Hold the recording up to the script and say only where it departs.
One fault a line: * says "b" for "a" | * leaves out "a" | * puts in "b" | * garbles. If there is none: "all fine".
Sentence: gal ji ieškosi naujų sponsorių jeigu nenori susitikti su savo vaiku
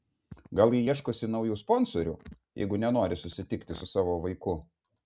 all fine